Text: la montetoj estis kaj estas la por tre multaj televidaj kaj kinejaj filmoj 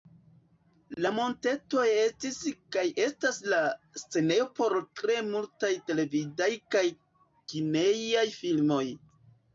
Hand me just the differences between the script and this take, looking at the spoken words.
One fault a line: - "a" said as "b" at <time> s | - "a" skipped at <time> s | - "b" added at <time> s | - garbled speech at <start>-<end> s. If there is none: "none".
- "scenejo" added at 4.0 s